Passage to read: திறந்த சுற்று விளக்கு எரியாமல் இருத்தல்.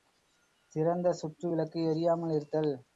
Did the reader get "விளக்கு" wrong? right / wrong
right